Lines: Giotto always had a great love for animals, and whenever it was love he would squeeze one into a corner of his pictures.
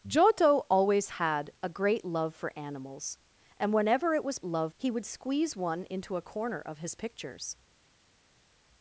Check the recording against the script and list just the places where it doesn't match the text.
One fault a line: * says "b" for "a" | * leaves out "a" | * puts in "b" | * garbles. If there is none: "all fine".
all fine